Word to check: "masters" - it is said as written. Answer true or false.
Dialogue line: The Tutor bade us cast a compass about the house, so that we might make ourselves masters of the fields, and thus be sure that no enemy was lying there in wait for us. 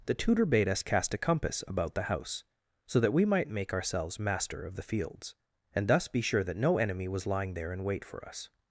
false